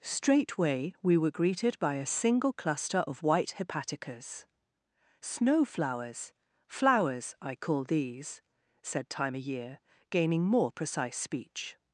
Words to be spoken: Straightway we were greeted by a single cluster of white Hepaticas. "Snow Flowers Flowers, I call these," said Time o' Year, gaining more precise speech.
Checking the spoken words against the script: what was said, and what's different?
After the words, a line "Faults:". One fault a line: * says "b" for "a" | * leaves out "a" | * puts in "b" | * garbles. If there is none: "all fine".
Straightway we were greeted by a single cluster of white Hepaticas. "Snow Flowers Flowers, I call these," said Time o' Year, gaining more precise speech.
Faults:
all fine